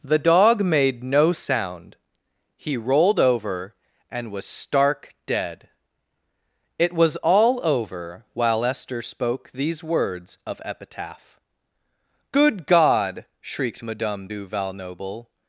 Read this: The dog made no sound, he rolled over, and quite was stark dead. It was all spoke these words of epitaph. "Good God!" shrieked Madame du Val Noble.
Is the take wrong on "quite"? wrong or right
wrong